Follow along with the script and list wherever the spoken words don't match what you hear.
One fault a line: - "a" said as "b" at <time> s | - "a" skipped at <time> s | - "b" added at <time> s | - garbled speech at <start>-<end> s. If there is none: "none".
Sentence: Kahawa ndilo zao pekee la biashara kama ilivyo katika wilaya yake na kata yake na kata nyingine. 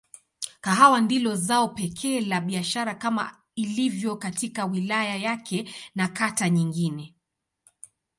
- "yake na kata" skipped at 6.5 s